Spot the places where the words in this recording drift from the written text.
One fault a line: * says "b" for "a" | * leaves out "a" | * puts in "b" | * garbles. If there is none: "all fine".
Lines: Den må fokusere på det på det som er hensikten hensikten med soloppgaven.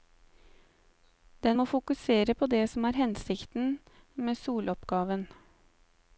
* leaves out "på det"
* leaves out "hensikten"